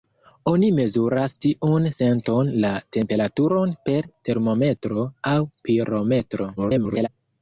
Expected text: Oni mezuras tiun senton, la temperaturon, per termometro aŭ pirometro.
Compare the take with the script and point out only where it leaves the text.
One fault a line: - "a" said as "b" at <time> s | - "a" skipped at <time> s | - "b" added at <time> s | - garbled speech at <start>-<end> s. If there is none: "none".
- garbled speech at 6.6-7.1 s